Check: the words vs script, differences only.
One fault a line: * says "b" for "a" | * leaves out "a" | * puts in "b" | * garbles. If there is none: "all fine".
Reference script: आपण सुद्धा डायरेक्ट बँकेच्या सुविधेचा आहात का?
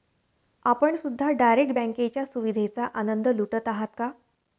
* puts in "आनंद लुटत"